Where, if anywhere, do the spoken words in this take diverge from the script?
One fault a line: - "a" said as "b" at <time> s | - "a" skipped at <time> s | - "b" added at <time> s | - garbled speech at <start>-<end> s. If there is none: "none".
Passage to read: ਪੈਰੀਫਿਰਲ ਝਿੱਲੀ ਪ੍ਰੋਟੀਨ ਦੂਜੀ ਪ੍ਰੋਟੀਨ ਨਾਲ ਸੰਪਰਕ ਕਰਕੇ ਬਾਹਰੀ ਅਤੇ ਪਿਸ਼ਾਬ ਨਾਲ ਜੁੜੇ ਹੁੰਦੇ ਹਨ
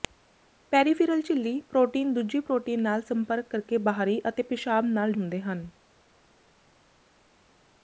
- "ਜੁੜੇ" skipped at 5.1 s